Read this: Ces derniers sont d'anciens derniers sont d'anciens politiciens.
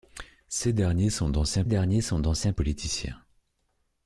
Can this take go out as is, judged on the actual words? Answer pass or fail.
pass